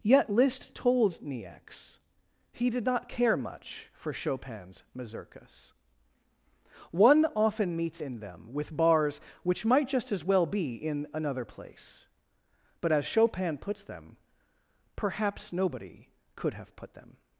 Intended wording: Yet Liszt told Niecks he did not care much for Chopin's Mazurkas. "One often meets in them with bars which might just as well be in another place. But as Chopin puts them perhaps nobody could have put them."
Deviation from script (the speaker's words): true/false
false